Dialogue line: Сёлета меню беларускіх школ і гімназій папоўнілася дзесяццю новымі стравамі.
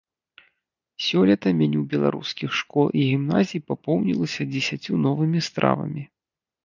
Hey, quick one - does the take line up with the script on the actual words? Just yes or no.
yes